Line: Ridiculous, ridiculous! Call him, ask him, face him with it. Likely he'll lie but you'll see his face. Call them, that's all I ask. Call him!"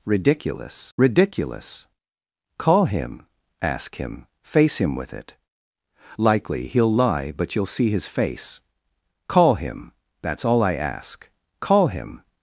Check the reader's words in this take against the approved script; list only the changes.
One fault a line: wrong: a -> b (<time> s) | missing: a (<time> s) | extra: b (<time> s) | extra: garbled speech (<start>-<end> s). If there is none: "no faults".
wrong: them -> him (9.5 s)